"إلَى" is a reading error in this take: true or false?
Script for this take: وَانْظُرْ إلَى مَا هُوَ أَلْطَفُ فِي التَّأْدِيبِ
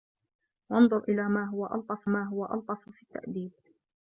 false